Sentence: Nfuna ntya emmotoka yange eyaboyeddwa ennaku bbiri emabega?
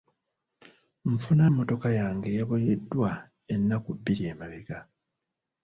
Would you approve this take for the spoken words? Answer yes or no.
no